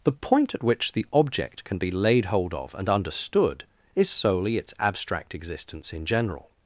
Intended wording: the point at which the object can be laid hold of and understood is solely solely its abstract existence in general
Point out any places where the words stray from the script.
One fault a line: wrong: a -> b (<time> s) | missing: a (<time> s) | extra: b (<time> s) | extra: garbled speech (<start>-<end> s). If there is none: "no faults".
missing: solely (4.6 s)